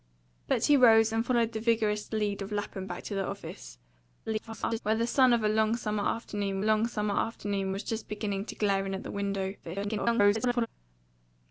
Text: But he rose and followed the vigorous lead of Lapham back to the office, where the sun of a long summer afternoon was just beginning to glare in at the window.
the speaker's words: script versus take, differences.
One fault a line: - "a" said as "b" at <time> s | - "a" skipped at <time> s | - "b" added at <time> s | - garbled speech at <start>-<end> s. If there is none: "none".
- garbled speech at 4.3-4.8 s
- "long summer afternoon" added at 6.6 s
- garbled speech at 9.6-10.7 s